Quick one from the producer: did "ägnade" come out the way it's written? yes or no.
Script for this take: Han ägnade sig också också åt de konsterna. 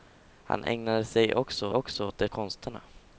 yes